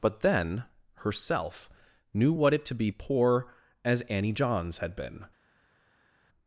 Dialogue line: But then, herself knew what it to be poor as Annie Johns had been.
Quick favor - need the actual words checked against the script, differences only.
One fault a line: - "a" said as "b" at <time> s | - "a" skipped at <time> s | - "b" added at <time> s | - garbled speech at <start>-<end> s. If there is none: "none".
none